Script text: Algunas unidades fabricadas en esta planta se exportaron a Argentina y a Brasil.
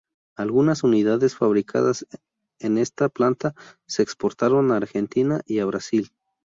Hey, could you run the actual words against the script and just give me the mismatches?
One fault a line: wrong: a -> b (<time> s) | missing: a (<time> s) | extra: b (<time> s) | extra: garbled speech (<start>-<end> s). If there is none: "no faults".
no faults